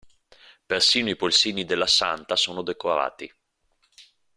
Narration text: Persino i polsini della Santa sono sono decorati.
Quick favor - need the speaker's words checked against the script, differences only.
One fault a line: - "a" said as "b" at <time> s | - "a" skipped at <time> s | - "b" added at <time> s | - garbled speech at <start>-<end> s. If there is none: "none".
- "sono" skipped at 2.6 s